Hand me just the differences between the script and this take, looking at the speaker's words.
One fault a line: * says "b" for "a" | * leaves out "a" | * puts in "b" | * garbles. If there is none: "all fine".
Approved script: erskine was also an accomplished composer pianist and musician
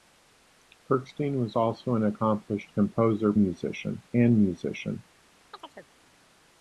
* says "musician" for "pianist"